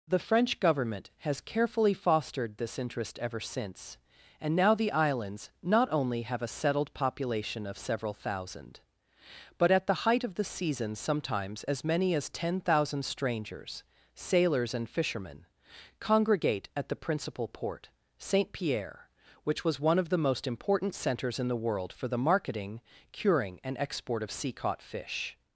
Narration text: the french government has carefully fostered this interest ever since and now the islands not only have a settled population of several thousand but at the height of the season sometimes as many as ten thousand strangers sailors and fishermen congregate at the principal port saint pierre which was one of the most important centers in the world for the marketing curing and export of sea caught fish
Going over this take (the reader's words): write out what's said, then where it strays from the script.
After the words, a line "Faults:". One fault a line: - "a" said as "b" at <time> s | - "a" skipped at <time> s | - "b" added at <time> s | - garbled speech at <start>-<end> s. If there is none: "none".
the french government has carefully fostered this interest ever since and now the islands not only have a settled population of several thousand but at the height of the season sometimes as many as ten thousand strangers sailors and fishermen congregate at the principal port saint pierre which was one of the most important centers in the world for the marketing curing and export of sea caught fish
Faults:
none